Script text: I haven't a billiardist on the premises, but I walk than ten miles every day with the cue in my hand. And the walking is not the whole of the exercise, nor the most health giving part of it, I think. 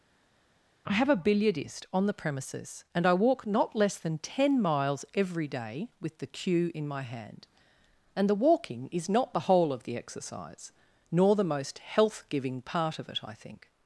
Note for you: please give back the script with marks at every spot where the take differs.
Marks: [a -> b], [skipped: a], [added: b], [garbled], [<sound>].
I [haven't -> have] a billiardist on the premises, [but -> and] I walk [added: not less] than ten miles every day with the cue in my hand. And the walking is not the whole of the exercise, nor the most health giving part of it, I think.